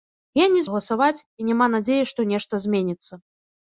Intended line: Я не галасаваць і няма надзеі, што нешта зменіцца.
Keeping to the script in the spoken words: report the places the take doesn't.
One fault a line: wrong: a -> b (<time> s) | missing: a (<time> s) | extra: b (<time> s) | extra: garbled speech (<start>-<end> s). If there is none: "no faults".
no faults